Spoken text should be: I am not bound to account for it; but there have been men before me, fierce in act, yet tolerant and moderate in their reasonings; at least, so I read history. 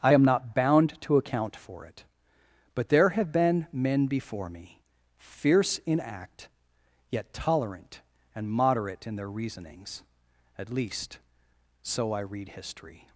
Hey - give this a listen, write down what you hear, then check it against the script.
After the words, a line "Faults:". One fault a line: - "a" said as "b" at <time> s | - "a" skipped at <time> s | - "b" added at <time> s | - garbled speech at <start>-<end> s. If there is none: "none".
I am not bound to account for it; but there have been men before me, fierce in act, yet tolerant and moderate in their reasonings; at least, so I read history.
Faults:
none